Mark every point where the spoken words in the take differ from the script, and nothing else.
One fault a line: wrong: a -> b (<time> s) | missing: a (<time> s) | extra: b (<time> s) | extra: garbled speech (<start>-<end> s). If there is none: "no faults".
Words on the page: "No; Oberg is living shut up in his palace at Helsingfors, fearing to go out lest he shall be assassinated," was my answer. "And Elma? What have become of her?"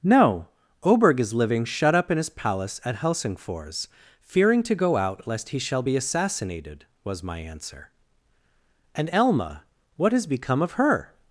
wrong: have -> has (10.1 s)